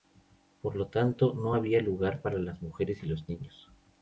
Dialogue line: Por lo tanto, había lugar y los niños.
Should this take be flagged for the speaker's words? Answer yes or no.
yes